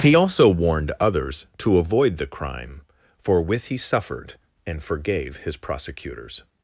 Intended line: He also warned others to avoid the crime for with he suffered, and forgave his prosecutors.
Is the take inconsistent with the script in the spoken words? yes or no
no